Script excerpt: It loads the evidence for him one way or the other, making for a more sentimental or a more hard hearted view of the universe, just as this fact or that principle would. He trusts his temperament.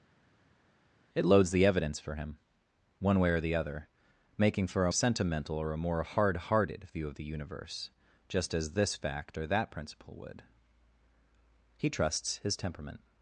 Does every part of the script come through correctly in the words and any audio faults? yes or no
no